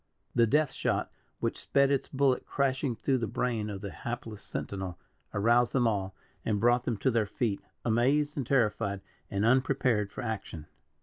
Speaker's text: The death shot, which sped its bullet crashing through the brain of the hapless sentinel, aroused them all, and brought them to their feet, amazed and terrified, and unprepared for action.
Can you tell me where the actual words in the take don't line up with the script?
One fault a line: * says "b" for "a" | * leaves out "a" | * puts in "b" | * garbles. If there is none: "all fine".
all fine